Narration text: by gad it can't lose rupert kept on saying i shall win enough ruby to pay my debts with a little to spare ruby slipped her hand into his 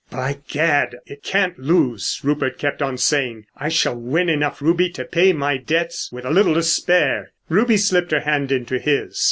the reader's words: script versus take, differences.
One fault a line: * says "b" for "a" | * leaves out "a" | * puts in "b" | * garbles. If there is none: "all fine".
all fine